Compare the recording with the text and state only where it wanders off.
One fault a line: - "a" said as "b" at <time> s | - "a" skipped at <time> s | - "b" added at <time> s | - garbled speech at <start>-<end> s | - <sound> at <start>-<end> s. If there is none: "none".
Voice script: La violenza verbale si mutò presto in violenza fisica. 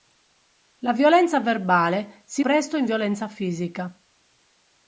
- "mutò" skipped at 2.4 s